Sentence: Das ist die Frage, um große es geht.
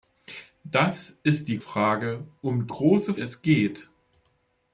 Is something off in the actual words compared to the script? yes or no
no